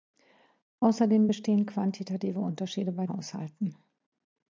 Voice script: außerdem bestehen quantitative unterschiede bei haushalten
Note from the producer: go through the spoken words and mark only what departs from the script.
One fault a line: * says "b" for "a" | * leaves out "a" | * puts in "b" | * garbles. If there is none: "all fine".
all fine